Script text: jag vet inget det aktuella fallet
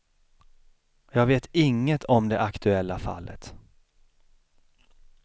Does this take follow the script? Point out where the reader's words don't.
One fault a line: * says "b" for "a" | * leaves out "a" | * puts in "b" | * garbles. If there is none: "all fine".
* puts in "om"